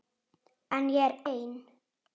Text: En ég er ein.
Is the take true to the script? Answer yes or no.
yes